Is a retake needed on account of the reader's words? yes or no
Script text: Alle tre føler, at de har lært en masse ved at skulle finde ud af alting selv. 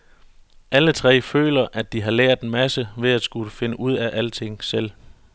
no